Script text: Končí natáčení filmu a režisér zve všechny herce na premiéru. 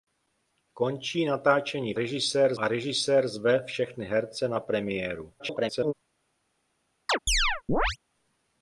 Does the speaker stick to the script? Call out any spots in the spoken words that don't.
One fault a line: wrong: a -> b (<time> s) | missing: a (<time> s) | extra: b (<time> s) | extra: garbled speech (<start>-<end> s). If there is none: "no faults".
wrong: filmu -> režisér (2.0 s)
extra: garbled speech (5.4-5.9 s)